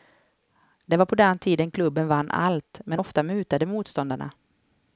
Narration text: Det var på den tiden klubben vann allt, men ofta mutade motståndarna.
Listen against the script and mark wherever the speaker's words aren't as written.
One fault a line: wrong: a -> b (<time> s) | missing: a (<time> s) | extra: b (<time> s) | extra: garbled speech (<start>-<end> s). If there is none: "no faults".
no faults